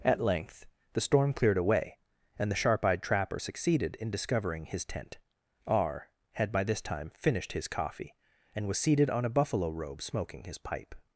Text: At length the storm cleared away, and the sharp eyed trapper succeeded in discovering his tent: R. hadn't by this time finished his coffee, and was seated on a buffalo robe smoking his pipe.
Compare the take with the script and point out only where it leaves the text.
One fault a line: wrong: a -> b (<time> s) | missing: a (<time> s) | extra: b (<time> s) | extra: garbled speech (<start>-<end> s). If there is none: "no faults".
wrong: hadn't -> had (6.3 s)